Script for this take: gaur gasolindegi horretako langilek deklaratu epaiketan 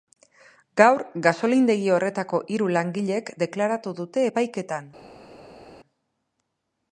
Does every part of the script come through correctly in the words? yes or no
no